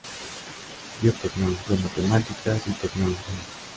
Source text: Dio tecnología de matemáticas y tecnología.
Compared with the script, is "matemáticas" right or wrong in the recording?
right